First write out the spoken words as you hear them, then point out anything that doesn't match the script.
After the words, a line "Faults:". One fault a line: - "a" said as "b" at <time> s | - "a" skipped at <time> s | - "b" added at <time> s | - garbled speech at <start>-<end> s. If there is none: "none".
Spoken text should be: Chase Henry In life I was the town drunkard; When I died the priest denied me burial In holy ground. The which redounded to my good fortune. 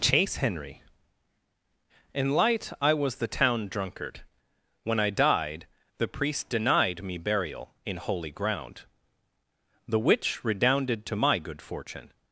Chase Henry In light I was the town drunkard; When I died the priest denied me burial In holy ground. The which redounded to my good fortune.
Faults:
- "life" said as "light" at 2.3 s